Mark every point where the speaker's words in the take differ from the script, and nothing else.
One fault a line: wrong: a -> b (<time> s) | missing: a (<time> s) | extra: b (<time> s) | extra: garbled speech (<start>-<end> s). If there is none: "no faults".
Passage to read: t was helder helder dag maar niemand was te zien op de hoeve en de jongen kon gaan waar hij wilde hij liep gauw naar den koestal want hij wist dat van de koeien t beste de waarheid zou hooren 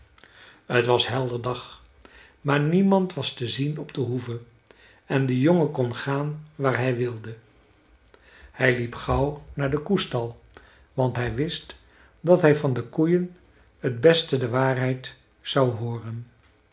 missing: helder (1.4 s)
extra: hij (12.4 s)